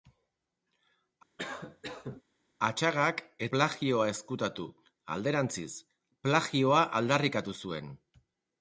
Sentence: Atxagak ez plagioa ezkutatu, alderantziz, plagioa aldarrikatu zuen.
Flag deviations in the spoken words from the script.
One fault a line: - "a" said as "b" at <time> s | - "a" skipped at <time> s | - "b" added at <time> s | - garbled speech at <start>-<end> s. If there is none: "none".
none